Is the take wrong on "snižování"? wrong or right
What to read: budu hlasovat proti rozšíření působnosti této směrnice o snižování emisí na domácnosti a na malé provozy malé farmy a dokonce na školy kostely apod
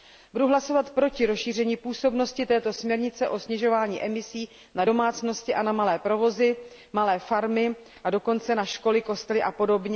right